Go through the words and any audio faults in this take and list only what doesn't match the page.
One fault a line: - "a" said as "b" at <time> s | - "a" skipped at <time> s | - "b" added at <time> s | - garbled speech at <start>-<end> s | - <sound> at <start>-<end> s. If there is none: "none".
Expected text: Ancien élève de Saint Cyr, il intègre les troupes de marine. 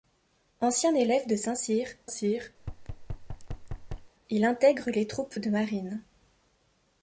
- "Cyr" added at 2.1 s
- thud at 2.6-4.1 s